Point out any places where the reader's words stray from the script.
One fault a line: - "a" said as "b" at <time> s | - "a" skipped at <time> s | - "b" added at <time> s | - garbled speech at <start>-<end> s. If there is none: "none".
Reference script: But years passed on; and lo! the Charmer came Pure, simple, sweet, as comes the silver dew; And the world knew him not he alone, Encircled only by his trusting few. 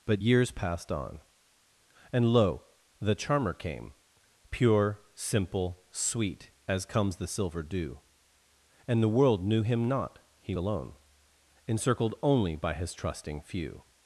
none